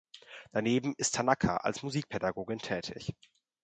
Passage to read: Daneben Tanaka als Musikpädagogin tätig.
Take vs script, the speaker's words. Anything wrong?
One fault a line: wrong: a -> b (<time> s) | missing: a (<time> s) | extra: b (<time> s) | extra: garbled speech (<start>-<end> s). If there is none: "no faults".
extra: ist (1.0 s)